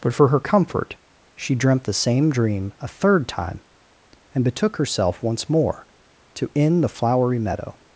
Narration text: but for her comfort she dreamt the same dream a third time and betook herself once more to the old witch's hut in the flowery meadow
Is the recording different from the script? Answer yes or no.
yes